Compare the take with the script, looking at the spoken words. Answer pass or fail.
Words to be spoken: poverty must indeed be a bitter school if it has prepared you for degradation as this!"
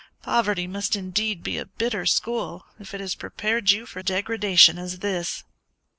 pass